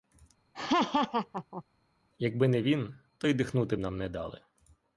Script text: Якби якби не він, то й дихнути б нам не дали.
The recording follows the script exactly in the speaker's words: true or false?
false